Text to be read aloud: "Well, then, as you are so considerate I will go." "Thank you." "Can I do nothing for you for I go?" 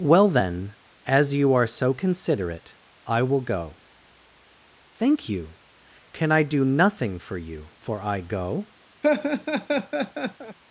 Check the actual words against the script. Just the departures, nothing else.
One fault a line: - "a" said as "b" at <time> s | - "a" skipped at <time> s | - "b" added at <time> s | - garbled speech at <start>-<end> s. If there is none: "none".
none